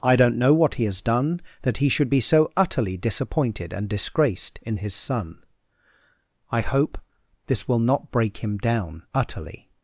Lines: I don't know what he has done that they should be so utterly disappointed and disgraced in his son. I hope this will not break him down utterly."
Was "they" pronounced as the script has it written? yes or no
no